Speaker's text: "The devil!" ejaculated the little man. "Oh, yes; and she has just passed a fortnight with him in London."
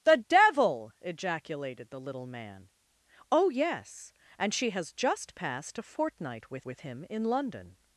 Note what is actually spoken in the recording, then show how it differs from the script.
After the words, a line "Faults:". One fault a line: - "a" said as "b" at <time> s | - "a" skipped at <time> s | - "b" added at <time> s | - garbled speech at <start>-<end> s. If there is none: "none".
"The devil!" ejaculated the little man. "Oh, yes; and she has just passed a fortnight with with him in London."
Faults:
- "with" added at 6.6 s